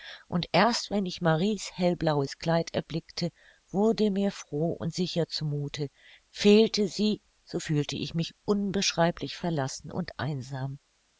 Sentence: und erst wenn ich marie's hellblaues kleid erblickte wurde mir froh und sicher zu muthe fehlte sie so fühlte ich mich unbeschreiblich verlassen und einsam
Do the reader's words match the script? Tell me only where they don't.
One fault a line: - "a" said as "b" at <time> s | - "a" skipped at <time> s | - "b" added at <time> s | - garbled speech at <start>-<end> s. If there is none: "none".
none